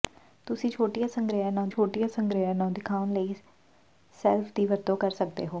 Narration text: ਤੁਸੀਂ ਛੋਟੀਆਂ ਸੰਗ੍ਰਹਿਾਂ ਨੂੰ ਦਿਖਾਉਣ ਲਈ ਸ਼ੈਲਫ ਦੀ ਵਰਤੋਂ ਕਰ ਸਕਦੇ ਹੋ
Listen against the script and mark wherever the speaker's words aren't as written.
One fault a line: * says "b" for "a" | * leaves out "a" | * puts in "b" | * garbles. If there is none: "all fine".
* puts in "ਛੋਟੀਆਂ ਸੰਗ੍ਰਹਿਾਂ ਨੂੰ"